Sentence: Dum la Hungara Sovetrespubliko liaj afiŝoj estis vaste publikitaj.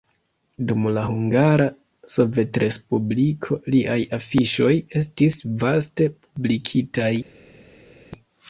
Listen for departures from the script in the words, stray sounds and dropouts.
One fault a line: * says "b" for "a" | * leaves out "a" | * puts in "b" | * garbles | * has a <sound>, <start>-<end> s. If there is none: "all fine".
all fine